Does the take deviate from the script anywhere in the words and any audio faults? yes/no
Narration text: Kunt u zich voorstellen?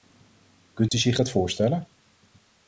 yes